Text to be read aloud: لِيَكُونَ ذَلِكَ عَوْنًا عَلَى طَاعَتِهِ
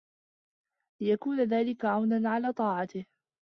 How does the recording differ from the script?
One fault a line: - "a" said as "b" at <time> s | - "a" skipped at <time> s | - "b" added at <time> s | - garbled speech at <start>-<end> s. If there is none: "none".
none